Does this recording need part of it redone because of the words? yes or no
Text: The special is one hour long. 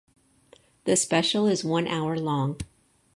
no